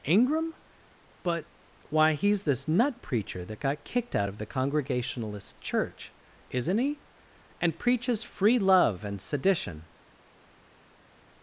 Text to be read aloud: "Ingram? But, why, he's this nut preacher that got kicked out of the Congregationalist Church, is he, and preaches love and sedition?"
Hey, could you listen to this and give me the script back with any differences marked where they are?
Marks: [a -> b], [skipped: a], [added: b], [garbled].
"Ingram? But, why, he's this nut preacher that got kicked out of the Congregationalist Church, [is -> isn't] he, and preaches [added: free] love and sedition?"